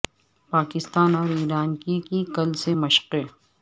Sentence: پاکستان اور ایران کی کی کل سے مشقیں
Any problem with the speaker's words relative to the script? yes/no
no